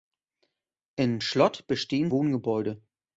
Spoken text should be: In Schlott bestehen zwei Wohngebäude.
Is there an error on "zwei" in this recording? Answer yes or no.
yes